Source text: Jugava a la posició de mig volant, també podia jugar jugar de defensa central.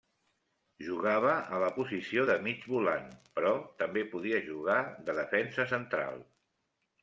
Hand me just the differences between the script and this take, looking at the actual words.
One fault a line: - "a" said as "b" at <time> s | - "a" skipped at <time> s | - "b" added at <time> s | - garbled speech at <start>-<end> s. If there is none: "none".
- "però" added at 3.4 s
- "jugar" skipped at 4.8 s